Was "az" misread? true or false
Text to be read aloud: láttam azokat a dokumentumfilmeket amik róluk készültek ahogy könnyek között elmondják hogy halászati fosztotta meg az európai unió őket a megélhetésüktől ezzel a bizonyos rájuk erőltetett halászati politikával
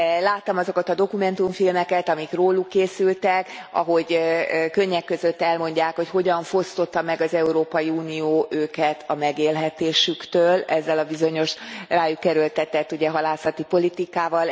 false